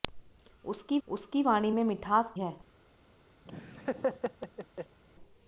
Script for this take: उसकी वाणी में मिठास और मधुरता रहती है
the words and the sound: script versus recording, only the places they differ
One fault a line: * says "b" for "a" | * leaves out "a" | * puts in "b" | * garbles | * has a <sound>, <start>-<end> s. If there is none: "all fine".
* puts in "उसकी"
* leaves out "और मधुरता रहती"
* has a laugh, 3.4-5.0 s